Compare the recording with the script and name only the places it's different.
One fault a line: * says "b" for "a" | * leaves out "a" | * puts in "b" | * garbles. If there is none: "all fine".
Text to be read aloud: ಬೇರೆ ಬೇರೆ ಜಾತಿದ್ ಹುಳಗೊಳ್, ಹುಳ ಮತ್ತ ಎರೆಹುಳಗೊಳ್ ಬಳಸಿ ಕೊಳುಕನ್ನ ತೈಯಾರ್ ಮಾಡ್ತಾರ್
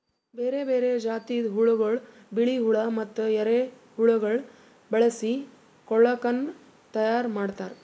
* puts in "ಬಿಳಿ"